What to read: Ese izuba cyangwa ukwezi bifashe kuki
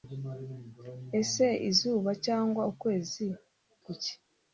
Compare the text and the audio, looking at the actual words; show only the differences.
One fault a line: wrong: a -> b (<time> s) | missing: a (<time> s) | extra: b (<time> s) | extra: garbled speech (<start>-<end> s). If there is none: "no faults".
missing: bifashe (3.3 s)